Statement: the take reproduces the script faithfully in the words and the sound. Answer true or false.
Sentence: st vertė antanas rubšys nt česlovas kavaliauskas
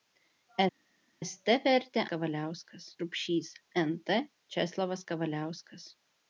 false